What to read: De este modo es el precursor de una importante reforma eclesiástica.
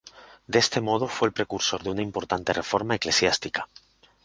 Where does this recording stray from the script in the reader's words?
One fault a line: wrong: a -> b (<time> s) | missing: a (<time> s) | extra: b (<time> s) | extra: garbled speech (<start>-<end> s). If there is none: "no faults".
wrong: es -> fue (1.1 s)